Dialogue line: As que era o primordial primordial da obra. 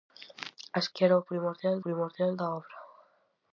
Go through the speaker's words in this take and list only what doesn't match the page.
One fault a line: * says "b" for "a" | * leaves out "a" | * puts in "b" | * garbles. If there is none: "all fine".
all fine